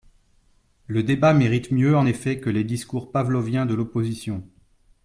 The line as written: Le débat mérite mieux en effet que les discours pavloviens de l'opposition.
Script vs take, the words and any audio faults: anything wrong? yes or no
no